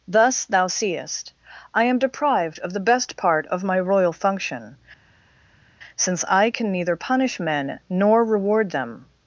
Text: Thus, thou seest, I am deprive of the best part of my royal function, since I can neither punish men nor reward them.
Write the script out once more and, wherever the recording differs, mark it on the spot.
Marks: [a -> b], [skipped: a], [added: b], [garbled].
Thus, thou seest, I am [deprive -> deprived] of the best part of my royal function, since I can neither punish men nor reward them.